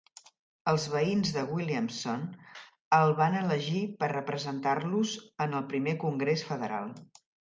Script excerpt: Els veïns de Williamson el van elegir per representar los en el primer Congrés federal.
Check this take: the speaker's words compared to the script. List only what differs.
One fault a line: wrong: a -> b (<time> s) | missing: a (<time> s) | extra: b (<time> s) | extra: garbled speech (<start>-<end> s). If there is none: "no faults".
no faults